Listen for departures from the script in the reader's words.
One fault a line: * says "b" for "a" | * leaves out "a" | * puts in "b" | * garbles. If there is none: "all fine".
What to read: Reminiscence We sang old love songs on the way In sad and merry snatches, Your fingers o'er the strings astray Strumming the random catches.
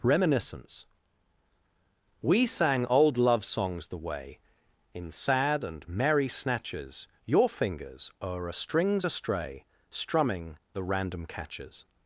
* leaves out "on"
* says "a" for "the"